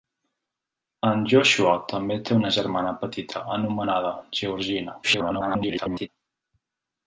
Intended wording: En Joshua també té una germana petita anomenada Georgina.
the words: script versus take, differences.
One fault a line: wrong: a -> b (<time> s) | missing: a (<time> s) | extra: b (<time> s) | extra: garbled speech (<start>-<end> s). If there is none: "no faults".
extra: garbled speech (5.0-6.1 s)